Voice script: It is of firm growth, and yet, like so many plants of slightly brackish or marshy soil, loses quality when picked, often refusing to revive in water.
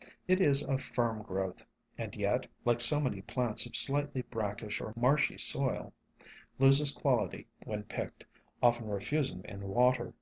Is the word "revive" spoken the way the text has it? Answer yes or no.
no